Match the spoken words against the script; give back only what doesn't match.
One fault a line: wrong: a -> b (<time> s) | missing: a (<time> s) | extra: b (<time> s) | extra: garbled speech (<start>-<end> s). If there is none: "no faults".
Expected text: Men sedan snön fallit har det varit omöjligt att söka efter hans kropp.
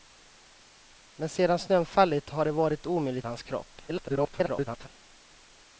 missing: att söka efter (3.3 s)
extra: garbled speech (3.9-4.9 s)